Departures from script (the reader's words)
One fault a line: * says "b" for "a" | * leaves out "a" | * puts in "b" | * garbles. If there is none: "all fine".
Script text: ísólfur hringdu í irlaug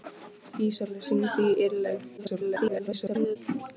* garbles